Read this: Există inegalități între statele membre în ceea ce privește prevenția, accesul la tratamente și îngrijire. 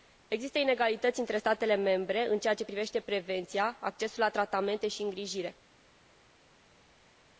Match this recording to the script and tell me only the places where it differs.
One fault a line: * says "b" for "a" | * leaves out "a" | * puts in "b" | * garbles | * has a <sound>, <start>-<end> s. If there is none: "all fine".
all fine